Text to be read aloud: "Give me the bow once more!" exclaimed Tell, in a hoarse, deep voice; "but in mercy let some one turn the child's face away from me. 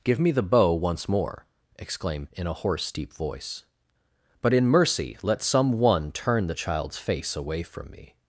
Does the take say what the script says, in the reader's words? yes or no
no